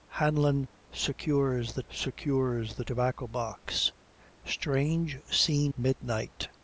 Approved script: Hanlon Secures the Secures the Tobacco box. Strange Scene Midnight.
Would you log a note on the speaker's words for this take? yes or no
no